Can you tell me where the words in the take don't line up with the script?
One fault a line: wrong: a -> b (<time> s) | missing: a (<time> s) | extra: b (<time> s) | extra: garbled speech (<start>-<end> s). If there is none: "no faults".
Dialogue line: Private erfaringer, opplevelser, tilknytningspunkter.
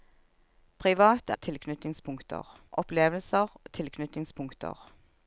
wrong: erfaringer -> tilknytningspunkter (1.4 s)